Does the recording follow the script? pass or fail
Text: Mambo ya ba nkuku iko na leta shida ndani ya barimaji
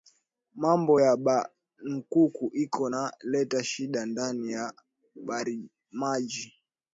pass